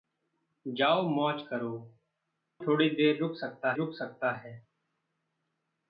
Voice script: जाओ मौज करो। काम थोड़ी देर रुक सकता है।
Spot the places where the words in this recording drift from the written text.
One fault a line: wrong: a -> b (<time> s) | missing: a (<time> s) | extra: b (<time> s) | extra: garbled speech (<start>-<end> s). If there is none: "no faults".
missing: काम (1.7 s)
extra: रुक सकता (3.7 s)